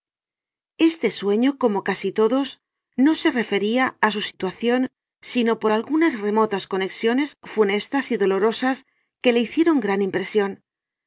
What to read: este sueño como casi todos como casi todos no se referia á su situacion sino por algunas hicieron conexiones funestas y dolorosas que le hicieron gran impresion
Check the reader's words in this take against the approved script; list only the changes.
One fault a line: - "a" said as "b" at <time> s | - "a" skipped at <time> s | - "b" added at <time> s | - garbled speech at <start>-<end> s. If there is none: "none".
- "como casi todos" skipped at 2.5 s
- "hicieron" said as "remotas" at 6.3 s